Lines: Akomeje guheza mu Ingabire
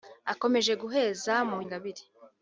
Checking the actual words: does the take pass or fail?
pass